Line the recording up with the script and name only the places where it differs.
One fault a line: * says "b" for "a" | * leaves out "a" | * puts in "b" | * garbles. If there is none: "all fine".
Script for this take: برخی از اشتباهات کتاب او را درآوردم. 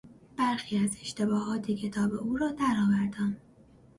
all fine